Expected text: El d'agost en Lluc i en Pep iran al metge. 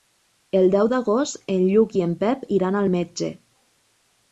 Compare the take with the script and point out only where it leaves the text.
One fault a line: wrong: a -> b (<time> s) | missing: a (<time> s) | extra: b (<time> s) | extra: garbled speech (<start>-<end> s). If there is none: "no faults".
extra: deu (0.8 s)